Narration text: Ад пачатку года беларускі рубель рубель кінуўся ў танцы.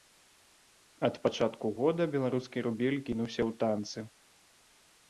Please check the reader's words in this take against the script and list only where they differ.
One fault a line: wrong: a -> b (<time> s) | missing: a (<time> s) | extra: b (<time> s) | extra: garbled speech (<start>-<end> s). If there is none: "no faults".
missing: рубель (3.0 s)